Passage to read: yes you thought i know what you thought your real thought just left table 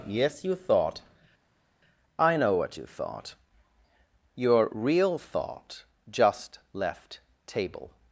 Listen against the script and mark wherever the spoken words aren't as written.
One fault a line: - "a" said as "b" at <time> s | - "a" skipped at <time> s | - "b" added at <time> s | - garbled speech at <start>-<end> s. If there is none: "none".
none